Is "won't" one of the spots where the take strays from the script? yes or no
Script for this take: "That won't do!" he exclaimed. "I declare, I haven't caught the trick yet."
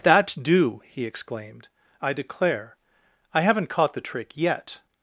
yes